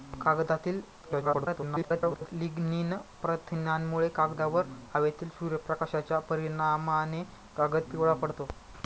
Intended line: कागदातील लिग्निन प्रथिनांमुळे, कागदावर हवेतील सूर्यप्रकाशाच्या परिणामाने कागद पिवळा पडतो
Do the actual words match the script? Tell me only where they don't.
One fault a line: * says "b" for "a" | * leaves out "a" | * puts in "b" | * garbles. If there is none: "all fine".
* garbles